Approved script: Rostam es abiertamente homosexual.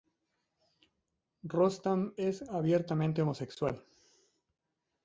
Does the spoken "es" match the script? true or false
true